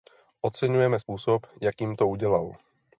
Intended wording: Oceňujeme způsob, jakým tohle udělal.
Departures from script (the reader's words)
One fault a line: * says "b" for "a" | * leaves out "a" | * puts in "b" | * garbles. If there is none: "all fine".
* says "to" for "tohle"